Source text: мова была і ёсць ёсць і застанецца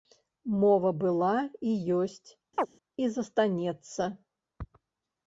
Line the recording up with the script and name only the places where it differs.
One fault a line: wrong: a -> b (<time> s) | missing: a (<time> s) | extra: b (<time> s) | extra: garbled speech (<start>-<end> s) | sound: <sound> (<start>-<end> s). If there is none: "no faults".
missing: ёсць (2.3 s)
sound: chirp (2.6-2.7 s)